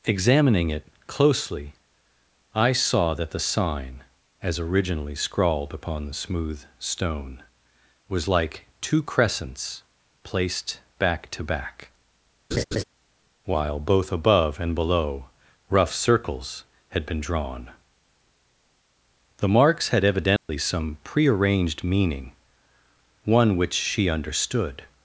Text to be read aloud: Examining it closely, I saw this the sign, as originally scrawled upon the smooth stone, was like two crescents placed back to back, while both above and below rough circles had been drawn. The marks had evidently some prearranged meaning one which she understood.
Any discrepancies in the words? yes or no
yes